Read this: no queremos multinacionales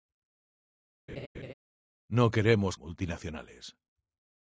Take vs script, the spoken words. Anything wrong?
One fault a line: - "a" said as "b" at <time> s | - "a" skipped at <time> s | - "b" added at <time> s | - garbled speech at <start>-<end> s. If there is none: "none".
none